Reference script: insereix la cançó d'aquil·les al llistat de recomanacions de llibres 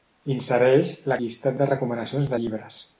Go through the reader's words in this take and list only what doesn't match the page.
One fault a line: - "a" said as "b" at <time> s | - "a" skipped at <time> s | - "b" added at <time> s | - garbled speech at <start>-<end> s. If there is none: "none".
- "cançó d'aquil·les al" skipped at 1.2 s
- "de" skipped at 2.3 s